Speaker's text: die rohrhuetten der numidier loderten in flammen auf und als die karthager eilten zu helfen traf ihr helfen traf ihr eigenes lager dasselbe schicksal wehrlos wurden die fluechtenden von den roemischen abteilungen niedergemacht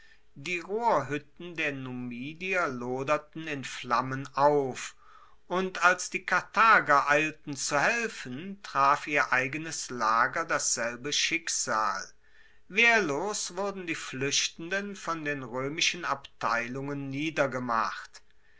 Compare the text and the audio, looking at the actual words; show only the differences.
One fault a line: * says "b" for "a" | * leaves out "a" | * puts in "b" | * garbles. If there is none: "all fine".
* leaves out "helfen traf ihr"